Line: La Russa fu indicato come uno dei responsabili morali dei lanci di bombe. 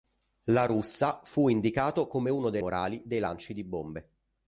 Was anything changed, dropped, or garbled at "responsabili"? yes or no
yes